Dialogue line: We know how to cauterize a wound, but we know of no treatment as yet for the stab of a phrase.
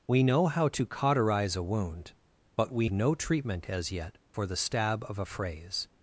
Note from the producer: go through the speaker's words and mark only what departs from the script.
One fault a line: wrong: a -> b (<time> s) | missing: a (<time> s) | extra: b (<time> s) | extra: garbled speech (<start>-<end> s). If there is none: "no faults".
missing: know of (2.9 s)